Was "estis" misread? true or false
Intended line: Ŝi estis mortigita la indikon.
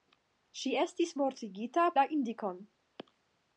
false